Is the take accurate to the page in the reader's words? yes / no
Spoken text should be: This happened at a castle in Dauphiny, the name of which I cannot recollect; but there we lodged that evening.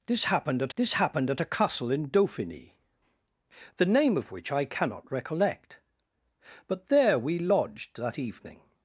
no